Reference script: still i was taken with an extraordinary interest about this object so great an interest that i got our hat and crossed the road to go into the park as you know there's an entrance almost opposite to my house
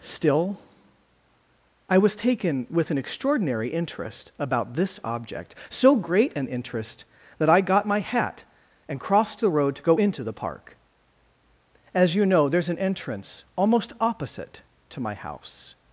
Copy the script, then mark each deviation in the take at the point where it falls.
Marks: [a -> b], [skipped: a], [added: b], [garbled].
still i was taken with an extraordinary interest about this object so great an interest that i got [our -> my] hat and crossed the road to go into the park as you know there's an entrance almost opposite to my house